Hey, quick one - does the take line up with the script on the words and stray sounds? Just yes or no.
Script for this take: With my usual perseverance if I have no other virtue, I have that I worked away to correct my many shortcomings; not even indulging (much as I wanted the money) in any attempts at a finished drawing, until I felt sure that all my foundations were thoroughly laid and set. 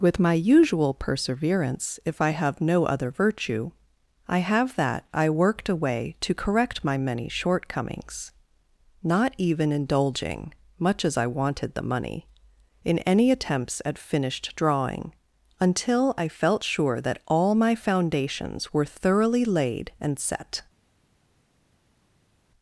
no